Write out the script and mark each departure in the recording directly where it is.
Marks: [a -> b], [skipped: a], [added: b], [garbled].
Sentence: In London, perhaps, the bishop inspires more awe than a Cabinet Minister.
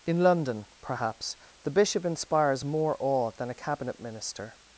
In London, perhaps, the bishop inspires more awe than a Cabinet Minister.